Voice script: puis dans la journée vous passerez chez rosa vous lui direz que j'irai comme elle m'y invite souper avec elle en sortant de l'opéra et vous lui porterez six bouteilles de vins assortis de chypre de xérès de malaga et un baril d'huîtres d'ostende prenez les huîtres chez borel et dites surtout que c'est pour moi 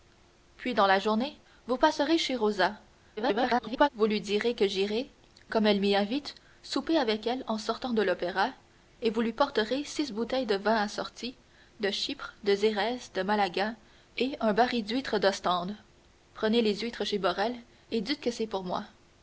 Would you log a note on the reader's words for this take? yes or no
yes